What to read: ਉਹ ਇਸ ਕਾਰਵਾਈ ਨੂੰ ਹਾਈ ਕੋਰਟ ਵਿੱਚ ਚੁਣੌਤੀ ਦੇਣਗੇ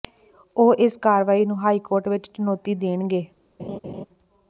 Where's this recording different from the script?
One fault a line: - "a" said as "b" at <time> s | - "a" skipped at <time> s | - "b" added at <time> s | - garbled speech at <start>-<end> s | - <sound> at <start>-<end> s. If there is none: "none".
- laugh at 3.6-4.1 s